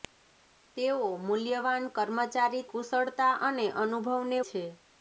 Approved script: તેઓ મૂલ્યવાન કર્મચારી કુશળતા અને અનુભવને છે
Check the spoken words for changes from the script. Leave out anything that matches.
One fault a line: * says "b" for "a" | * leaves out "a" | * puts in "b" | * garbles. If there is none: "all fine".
all fine